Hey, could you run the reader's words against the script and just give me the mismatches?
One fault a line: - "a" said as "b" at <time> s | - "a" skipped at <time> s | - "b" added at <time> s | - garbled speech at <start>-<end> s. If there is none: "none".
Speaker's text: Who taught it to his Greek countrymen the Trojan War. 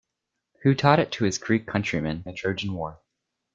none